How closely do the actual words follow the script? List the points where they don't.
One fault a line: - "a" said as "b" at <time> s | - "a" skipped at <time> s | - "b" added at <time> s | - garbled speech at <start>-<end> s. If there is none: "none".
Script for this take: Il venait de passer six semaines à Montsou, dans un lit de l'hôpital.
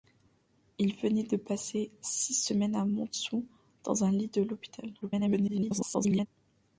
- garbled speech at 5.0-6.3 s